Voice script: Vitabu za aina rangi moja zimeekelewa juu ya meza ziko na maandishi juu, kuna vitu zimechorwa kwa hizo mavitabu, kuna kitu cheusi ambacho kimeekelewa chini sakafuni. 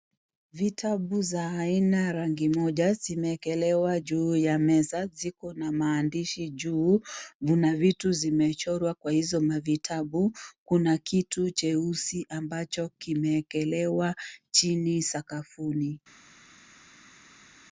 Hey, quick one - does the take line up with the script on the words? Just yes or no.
yes